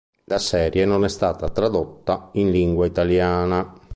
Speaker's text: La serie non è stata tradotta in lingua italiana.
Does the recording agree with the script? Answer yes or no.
yes